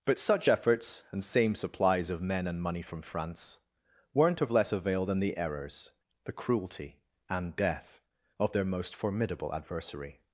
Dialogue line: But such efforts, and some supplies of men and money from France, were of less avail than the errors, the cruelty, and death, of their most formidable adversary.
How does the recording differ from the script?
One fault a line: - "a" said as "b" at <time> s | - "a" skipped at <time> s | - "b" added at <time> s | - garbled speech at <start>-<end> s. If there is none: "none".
- "some" said as "same" at 1.2 s
- "were" said as "weren't" at 4.1 s